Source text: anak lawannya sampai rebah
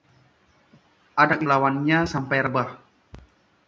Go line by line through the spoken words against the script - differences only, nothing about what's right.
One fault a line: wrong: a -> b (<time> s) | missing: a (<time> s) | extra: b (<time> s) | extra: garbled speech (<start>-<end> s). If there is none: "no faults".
no faults